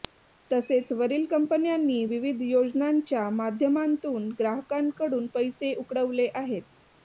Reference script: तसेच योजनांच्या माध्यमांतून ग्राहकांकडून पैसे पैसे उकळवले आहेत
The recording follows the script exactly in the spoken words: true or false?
false